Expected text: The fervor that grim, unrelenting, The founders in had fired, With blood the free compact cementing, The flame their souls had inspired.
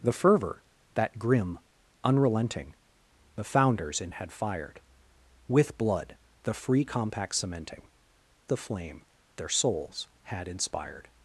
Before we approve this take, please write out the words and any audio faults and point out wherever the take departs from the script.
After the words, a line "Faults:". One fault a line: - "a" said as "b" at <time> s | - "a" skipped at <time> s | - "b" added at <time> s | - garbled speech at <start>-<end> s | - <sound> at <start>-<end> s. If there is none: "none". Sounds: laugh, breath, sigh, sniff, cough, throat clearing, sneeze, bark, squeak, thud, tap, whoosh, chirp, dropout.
The fervor that grim, unrelenting, The founders in had fired, With blood the free compact cementing, The flame their souls had inspired.
Faults:
none